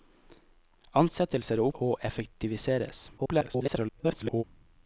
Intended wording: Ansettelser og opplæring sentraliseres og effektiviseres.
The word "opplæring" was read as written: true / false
false